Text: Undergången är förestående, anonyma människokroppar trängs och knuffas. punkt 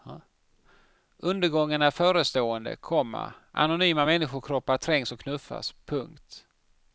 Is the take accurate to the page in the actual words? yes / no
no